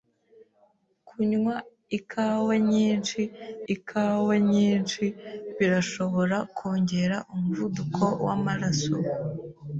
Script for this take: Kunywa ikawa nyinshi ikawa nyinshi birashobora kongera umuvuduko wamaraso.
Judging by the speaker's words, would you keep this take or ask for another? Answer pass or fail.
pass